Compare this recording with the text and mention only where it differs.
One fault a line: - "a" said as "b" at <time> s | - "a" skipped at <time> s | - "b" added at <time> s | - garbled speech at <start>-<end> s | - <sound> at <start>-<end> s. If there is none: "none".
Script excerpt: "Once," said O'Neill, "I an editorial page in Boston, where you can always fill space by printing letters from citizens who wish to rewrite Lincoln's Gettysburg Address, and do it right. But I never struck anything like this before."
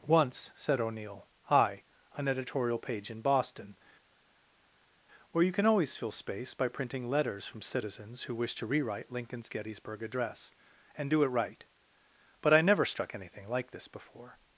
none